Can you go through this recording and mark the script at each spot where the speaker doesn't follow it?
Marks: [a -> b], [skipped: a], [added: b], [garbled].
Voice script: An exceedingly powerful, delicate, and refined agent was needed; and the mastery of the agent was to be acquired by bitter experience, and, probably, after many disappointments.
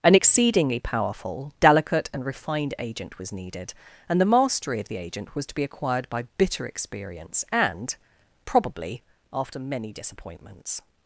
An exceedingly powerful, delicate, and refined agent was needed; and the mastery of the agent was to be acquired by bitter experience, and, probably, after many disappointments.